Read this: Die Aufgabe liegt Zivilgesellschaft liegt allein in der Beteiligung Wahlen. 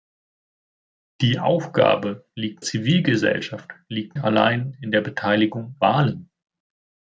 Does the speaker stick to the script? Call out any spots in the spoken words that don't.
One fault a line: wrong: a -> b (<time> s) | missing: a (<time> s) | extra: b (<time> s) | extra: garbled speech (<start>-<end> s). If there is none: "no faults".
no faults